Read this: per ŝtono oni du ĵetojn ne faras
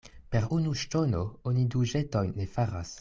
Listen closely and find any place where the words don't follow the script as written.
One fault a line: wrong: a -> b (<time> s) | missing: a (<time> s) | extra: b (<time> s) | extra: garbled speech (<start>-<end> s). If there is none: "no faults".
extra: unu (0.6 s)